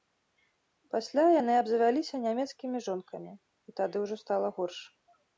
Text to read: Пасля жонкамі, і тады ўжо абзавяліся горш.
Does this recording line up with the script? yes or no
no